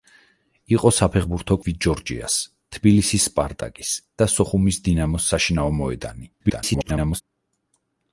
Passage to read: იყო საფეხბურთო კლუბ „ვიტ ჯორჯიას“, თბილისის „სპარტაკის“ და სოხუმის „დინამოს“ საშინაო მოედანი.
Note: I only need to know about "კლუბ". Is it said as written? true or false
false